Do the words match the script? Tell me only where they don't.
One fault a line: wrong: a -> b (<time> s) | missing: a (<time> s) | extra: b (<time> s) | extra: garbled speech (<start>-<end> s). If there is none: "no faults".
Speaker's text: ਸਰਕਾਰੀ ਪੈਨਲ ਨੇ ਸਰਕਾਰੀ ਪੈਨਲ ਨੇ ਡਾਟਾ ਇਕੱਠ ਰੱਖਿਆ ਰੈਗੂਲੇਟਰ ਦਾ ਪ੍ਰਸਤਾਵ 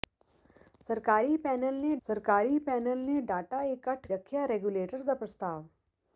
no faults